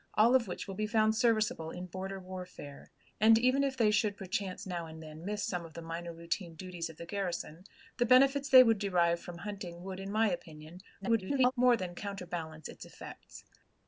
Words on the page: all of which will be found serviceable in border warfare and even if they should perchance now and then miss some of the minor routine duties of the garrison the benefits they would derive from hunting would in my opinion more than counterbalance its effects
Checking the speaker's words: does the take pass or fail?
fail